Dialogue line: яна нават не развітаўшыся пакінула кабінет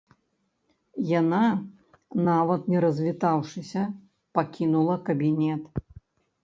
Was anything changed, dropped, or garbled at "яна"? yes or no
no